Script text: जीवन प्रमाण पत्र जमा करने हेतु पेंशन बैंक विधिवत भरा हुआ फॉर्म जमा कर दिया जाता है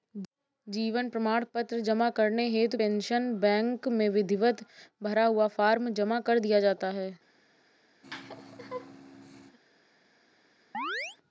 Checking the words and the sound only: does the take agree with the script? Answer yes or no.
no